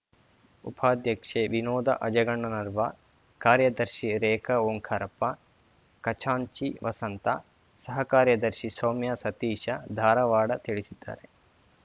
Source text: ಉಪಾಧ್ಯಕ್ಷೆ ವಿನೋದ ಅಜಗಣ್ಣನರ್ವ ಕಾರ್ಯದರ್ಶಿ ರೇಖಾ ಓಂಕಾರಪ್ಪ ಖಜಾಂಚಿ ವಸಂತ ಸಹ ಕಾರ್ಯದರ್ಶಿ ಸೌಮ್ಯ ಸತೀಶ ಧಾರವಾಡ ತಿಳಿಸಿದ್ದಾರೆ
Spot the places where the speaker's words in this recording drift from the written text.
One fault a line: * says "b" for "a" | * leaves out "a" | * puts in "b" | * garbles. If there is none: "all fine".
all fine